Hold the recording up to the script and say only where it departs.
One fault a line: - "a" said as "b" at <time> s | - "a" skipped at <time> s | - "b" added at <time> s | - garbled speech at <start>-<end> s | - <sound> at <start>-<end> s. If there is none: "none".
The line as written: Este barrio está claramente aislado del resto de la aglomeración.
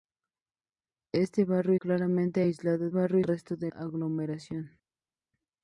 - "está" skipped at 1.8 s
- "del" said as "barrio" at 2.9 s
- "la" skipped at 3.7 s